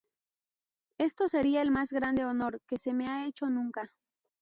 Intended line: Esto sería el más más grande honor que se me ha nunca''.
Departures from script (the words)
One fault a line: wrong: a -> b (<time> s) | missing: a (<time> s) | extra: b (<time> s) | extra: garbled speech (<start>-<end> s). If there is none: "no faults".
missing: más (1.9 s)
extra: hecho (3.3 s)